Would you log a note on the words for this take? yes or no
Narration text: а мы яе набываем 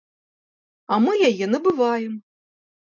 no